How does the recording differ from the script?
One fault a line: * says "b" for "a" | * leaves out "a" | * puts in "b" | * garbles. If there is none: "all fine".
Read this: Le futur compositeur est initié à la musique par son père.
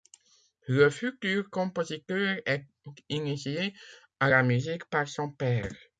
all fine